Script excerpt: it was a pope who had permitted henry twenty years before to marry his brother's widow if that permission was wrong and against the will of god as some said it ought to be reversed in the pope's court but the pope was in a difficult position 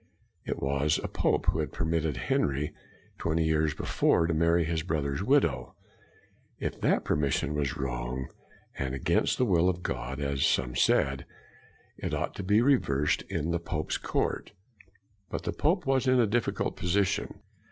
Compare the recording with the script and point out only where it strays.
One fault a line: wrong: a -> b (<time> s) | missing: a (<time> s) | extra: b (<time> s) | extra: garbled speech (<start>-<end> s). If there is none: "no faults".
no faults